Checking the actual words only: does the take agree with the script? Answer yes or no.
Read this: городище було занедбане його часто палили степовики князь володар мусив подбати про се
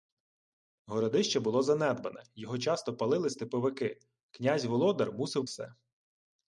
no